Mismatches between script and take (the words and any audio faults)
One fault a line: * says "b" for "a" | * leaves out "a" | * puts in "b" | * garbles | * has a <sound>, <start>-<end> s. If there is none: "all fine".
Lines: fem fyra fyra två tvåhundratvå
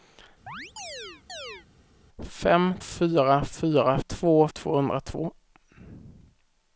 * has a chirp, 0.5-1.7 s